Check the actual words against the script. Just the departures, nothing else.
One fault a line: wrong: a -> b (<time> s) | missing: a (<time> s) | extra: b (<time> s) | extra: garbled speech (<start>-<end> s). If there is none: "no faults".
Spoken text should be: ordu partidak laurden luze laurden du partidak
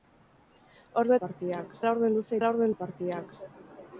no faults